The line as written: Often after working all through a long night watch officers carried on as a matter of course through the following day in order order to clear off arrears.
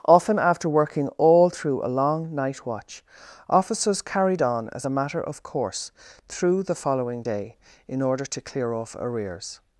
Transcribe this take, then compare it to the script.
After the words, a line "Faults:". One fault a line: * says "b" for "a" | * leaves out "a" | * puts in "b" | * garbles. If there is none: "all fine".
Often after working all through a long night watch officers carried on as a matter of course through the following day in order to clear off arrears.
Faults:
* leaves out "order"